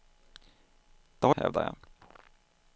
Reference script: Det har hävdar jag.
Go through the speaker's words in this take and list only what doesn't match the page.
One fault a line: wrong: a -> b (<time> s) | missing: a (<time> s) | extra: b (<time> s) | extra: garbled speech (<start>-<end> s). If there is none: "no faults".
no faults